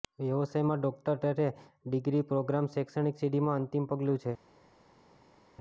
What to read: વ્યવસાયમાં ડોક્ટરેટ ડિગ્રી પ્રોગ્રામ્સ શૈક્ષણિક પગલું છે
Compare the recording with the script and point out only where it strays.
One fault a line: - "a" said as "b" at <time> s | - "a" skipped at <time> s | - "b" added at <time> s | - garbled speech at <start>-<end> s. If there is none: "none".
- "સીડીમાં અંતિમ" added at 3.2 s